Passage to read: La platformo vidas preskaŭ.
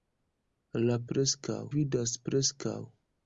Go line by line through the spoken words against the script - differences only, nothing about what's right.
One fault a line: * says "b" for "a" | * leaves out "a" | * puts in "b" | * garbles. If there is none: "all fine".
* says "preskaŭ" for "platformo"